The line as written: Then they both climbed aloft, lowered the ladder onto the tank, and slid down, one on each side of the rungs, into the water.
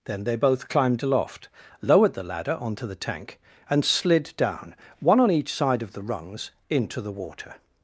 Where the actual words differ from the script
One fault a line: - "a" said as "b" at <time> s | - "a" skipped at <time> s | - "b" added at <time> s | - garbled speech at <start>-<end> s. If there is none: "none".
none